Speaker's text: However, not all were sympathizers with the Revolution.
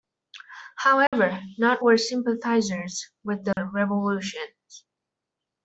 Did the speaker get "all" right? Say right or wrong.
wrong